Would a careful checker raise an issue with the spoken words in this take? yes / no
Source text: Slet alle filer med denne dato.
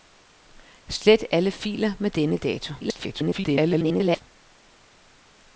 yes